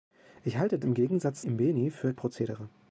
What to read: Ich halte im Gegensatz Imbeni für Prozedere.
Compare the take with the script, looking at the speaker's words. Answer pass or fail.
pass